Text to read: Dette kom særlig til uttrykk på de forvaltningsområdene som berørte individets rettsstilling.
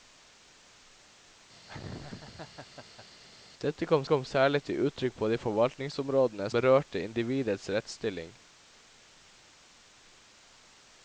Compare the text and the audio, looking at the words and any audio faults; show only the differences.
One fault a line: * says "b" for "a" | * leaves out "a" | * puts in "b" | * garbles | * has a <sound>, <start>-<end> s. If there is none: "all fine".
* has a laugh, 1.7-3.1 s
* puts in "kom"
* leaves out "som"